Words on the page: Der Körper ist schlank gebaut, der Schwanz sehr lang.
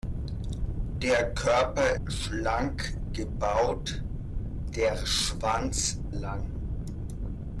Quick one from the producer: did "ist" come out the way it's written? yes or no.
no